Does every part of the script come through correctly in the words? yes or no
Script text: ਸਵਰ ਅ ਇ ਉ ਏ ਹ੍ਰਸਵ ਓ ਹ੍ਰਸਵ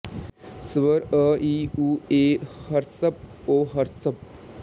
yes